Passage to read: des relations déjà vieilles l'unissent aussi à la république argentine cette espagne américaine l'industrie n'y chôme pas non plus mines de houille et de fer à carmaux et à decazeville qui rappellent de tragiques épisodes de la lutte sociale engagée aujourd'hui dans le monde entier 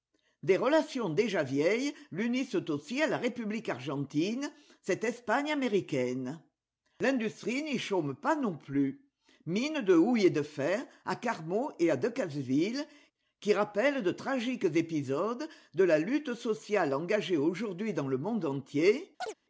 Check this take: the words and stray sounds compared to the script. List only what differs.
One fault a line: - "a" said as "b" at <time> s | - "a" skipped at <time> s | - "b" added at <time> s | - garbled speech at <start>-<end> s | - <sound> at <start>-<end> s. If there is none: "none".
- chirp at 19.2-19.3 s